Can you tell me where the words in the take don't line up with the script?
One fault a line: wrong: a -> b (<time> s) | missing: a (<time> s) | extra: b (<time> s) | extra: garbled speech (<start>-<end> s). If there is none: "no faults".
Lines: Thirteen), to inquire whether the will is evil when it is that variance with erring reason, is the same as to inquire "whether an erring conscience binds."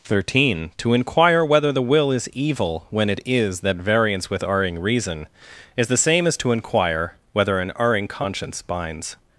no faults